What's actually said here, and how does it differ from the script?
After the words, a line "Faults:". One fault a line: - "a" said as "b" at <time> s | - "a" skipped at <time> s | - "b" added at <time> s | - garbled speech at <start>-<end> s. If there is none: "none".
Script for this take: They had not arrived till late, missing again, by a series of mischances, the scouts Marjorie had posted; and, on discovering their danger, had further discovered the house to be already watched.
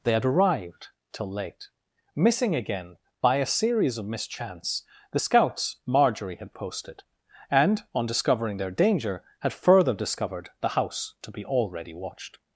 They had arrived till late, missing again, by a series of mischance, the scouts Marjorie had posted; and, on discovering their danger, had further discovered the house to be already watched.
Faults:
- "not" skipped at 0.2 s
- "mischances" said as "mischance" at 4.0 s